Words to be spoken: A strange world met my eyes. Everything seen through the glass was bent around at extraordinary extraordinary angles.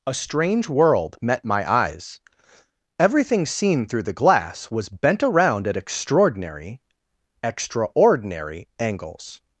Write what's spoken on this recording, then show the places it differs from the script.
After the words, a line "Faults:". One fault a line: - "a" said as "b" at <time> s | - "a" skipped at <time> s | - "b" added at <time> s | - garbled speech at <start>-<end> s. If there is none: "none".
A strange world met my eyes. Everything seen through the glass was bent around at extraordinary extraordinary angles.
Faults:
none